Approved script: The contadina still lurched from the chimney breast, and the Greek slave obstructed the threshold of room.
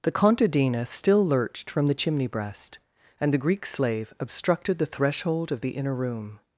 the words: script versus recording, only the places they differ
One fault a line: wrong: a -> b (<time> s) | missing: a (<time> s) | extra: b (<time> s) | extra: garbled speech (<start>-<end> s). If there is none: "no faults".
extra: the inner (5.6 s)